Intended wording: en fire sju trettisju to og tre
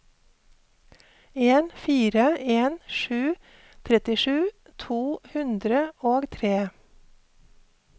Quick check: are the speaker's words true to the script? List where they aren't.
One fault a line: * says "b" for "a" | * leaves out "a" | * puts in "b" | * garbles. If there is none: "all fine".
* puts in "en"
* puts in "hundre"